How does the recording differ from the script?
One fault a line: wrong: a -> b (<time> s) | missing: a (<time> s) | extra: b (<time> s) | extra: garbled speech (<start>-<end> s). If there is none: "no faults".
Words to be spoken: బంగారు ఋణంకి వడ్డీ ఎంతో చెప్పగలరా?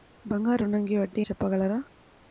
missing: ఎంతో (1.2 s)